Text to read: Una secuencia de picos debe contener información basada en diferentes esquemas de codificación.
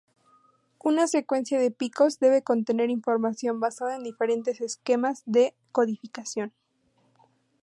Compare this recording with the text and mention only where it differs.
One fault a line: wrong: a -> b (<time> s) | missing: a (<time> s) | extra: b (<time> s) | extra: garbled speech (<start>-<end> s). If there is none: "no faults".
no faults